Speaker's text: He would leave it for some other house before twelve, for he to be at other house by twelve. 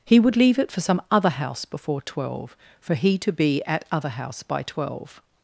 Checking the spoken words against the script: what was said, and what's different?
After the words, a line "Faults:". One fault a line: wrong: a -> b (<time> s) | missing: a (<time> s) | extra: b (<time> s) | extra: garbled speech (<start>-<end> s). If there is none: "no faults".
He would leave it for some other house before twelve, for he to be at other house by twelve.
Faults:
no faults